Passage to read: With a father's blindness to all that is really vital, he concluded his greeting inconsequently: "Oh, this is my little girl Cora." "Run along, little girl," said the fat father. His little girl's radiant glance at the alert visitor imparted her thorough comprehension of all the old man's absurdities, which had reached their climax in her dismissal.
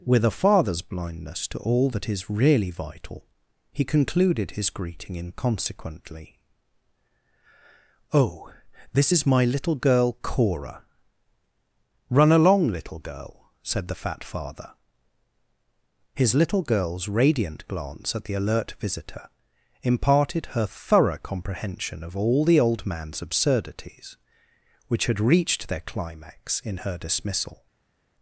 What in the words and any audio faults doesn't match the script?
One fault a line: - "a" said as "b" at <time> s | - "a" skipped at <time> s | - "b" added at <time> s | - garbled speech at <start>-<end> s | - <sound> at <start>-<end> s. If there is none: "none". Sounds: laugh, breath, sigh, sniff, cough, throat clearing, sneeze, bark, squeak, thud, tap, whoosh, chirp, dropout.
none